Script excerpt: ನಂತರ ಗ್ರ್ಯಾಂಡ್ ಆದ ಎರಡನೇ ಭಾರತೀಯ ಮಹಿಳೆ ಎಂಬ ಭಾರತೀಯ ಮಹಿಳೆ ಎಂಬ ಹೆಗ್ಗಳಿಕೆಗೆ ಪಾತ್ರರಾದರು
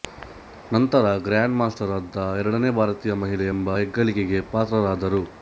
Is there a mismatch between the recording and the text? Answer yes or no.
yes